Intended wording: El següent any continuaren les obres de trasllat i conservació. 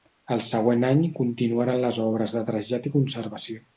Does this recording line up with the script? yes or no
yes